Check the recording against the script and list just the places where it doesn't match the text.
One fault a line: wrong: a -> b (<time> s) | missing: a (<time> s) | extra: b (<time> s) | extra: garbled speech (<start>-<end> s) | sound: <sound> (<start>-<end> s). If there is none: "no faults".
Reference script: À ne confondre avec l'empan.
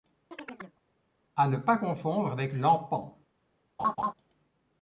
sound: chirp (0.3-0.8 s)
extra: pas (1.6 s)
sound: laugh (3.8-4.1 s)